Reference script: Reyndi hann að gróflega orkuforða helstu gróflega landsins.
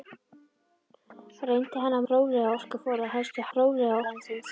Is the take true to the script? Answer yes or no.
yes